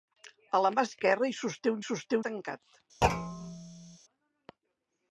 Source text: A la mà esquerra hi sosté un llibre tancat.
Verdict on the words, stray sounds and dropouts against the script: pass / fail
fail